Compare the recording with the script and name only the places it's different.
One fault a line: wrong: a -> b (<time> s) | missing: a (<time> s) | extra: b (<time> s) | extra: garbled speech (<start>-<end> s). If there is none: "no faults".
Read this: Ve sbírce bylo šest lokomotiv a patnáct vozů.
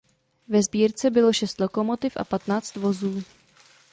no faults